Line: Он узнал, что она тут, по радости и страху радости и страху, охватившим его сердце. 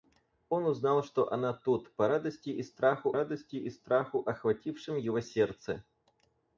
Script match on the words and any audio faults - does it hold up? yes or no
yes